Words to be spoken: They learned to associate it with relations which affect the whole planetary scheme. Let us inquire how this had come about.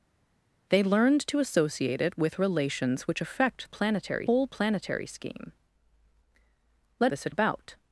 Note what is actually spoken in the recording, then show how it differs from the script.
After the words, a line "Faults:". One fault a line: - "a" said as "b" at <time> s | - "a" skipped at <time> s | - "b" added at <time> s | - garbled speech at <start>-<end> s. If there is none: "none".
They learned to associate it with relations which affect planetary whole planetary scheme. Let this had about.
Faults:
- "the" said as "planetary" at 3.7 s
- "us inquire how" skipped at 7.1 s
- "come" skipped at 7.4 s